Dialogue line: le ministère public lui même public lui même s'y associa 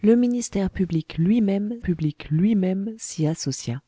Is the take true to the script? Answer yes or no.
yes